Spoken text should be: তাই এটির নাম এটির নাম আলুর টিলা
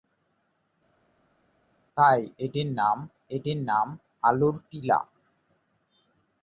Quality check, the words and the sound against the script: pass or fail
pass